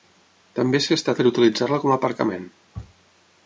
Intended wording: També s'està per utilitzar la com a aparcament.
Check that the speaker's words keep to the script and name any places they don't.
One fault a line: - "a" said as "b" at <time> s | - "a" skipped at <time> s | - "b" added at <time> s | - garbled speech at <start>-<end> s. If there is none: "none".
none